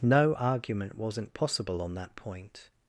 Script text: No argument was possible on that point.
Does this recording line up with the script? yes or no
no